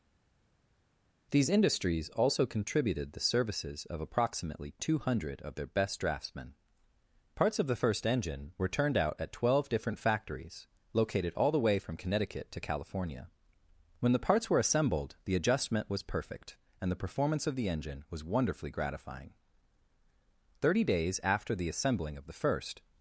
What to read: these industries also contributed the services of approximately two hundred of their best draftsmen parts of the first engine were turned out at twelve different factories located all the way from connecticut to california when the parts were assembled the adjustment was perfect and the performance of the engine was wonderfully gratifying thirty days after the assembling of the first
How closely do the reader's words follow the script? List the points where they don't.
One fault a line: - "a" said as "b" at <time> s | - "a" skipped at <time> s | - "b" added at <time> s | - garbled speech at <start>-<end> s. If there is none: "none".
none